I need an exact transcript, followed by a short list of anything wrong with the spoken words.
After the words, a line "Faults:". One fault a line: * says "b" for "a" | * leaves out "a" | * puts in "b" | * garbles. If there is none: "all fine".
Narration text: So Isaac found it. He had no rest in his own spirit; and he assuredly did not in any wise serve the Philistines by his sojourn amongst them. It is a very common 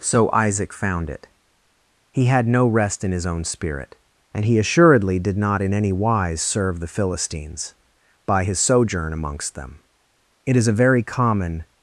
So Isaac found it. He had no rest in his own spirit; and he assuredly did not in any wise serve the Philistines by his sojourn amongst them. It is a very common
Faults:
all fine